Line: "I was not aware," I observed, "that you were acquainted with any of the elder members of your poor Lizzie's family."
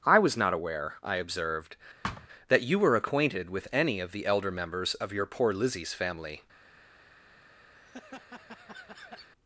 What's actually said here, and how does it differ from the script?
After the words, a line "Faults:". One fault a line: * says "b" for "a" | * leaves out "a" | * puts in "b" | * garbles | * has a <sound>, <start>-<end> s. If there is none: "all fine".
"I was not aware," I observed, "that you were acquainted with any of the elder members of your poor Lizzie's family."
Faults:
* has a thud, 2.0-2.3 s
* has a laugh, 7.7-9.3 s